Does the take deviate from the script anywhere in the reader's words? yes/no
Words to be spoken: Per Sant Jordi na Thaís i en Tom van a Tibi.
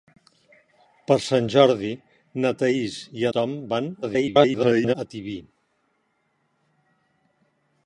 yes